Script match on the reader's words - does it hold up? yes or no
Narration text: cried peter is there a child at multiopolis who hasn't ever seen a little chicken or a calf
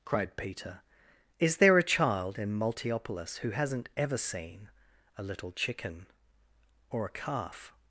no